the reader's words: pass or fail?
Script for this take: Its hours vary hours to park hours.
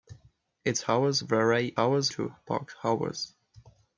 pass